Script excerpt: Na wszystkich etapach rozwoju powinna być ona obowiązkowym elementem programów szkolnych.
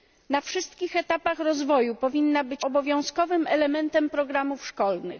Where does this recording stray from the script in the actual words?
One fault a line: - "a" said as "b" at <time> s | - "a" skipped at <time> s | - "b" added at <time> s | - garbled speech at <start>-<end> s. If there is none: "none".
- "ona" skipped at 2.6 s